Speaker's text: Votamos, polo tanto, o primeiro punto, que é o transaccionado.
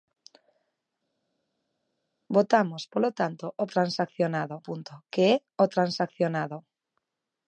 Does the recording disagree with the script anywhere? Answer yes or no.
yes